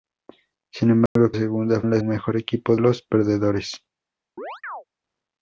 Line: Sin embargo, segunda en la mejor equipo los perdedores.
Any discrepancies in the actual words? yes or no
no